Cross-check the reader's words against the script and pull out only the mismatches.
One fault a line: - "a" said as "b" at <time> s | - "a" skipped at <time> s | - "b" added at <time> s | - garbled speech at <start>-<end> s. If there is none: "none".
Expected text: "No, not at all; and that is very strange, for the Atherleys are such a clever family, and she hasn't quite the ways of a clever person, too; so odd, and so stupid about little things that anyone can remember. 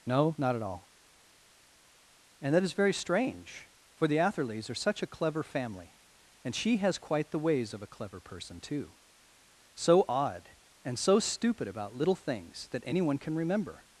- "hasn't" said as "has" at 6.8 s